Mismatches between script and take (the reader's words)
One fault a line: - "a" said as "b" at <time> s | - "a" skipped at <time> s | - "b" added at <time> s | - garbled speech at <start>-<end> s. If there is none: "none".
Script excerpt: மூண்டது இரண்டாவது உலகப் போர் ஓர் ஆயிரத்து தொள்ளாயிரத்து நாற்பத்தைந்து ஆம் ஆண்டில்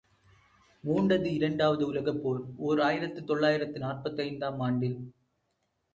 none